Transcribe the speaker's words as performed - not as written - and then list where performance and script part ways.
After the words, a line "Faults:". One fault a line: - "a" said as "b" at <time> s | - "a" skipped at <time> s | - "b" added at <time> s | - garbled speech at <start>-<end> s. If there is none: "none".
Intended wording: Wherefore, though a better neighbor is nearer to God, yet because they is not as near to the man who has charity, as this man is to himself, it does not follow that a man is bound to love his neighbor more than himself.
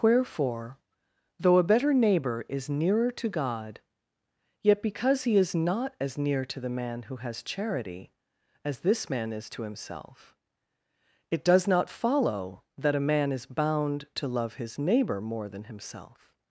Wherefore, though a better neighbor is nearer to God, yet because he is not as near to the man who has charity, as this man is to himself, it does not follow that a man is bound to love his neighbor more than himself.
Faults:
- "they" said as "he" at 5.2 s